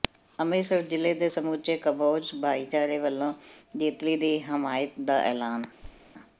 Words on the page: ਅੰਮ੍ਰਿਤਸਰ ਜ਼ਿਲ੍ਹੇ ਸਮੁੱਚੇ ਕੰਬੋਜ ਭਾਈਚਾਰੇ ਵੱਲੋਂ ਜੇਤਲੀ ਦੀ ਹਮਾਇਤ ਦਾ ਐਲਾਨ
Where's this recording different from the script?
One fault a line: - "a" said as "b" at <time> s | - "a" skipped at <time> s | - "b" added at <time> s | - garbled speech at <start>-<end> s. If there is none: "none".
- "ਦੇ" added at 1.1 s